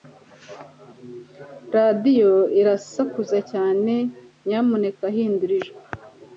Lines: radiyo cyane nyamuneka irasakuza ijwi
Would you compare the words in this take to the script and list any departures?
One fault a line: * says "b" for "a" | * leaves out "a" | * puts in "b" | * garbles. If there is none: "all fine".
* puts in "irasakuza"
* says "hindura" for "irasakuza"